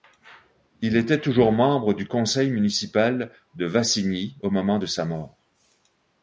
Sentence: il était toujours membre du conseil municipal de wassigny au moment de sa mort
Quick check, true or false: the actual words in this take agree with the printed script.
true